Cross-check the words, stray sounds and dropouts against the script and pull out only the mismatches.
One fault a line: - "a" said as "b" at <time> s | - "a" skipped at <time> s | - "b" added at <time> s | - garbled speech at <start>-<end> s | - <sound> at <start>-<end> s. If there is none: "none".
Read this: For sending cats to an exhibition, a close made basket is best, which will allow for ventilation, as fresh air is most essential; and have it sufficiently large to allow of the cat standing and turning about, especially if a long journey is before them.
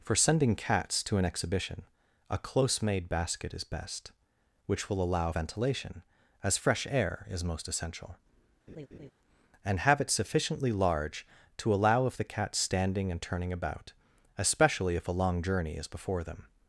- "for" skipped at 5.3 s
- laugh at 8.7-9.1 s